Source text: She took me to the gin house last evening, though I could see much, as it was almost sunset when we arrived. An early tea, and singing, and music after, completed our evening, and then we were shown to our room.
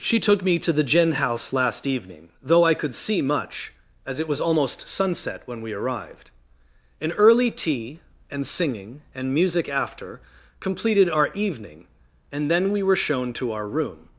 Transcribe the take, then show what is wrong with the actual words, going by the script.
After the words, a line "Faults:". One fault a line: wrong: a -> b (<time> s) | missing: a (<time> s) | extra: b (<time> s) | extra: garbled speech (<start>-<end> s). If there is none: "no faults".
She took me to the gin house last evening, though I could see much, as it was almost sunset when we arrived. An early tea, and singing, and music after, completed our evening, and then we were shown to our room.
Faults:
no faults